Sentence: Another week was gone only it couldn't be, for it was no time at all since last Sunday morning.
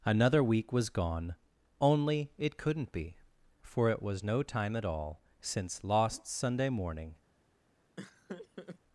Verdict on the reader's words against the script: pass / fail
fail